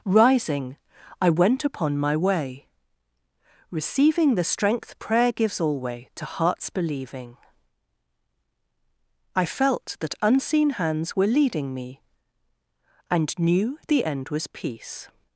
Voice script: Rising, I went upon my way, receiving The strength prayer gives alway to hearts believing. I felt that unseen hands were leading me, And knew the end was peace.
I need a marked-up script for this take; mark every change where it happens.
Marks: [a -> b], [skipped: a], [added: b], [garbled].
Rising, I went upon my way, receiving The strength prayer gives alway to hearts believing. I felt that unseen hands were leading me, And knew the end was peace.